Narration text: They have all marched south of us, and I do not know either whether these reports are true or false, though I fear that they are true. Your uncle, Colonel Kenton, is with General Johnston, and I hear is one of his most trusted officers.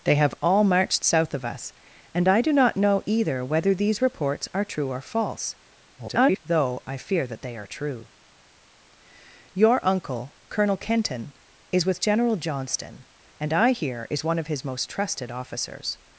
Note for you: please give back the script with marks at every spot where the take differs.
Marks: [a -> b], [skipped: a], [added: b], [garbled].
They have all marched south of us, and I do not know either whether these reports are true or false, [garbled] though I fear that they are true. Your uncle, Colonel Kenton, is with General Johnston, and I hear is one of his most trusted officers.